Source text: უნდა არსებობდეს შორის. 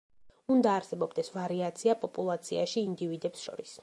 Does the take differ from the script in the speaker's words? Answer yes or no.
yes